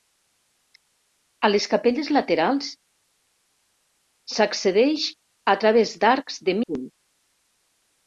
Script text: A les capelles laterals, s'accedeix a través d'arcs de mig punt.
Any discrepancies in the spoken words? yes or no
yes